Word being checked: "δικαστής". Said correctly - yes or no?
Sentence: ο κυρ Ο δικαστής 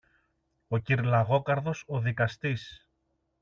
yes